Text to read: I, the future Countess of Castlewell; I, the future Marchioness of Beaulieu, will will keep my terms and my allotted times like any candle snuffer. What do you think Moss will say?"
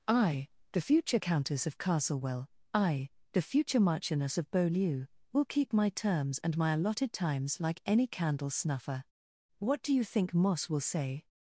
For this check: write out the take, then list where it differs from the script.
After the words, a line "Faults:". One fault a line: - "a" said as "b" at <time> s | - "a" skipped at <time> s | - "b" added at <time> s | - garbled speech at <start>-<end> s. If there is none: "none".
I, the future Countess of Castlewell; I, the future Marchioness of Beaulieu, will keep my terms and my allotted times like any candle snuffer. What do you think Moss will say?"
Faults:
- "will" skipped at 5.4 s